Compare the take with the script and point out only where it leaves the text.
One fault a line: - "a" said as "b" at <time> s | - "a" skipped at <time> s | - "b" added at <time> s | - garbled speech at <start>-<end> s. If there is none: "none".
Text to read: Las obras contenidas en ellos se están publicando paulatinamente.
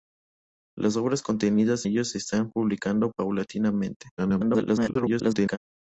- "en" skipped at 1.9 s
- garbled speech at 4.2-5.6 s